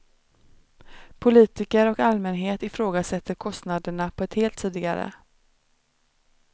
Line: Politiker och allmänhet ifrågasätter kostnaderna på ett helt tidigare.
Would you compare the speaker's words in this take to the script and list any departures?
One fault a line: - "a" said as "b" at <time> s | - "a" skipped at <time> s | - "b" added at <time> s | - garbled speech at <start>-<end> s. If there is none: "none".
none